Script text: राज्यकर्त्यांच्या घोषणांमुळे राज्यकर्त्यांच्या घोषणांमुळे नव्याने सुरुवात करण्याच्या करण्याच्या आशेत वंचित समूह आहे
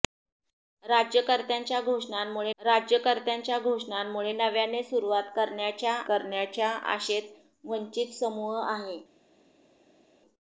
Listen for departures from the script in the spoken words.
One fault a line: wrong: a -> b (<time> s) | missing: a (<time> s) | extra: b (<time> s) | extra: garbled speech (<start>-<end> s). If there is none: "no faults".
no faults